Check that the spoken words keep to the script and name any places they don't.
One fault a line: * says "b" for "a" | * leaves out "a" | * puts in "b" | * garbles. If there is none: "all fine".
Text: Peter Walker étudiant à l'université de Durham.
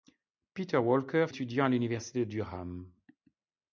all fine